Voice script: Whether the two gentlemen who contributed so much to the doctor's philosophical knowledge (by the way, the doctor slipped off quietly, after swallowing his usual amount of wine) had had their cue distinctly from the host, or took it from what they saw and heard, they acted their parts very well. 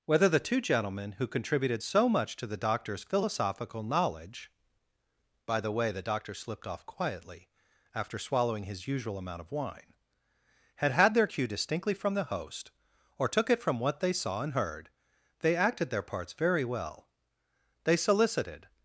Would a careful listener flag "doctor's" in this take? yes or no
no